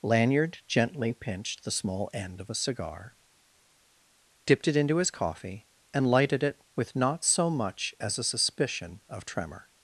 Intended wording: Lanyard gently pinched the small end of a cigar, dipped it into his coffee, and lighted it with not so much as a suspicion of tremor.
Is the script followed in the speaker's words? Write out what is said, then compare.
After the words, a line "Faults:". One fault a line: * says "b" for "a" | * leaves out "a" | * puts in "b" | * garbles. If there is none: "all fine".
Lanyard gently pinched the small end of a cigar, dipped it into his coffee, and lighted it with not so much as a suspicion of tremor.
Faults:
all fine